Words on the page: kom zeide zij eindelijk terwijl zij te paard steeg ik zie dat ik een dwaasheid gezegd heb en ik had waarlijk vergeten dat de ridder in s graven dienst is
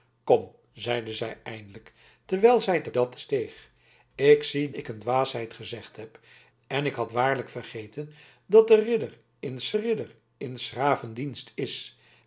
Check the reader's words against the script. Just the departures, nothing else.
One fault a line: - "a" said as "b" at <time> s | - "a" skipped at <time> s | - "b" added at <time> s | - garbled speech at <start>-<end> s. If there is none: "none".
- "paard" said as "dat" at 2.9 s
- "dat" skipped at 4.7 s
- "ridder in s" added at 9.7 s